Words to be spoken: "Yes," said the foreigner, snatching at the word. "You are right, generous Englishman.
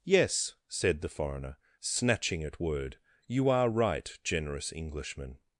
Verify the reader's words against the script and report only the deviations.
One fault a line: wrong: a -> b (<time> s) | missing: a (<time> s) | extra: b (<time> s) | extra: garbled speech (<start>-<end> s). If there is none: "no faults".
missing: the (2.6 s)